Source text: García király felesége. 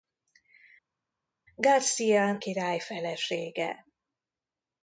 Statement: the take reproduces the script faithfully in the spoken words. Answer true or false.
true